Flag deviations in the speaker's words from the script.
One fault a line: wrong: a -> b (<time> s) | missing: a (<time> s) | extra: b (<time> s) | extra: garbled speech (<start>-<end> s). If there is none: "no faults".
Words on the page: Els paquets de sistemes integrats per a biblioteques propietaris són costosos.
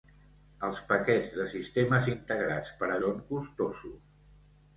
missing: biblioteques propietaris (3.0 s)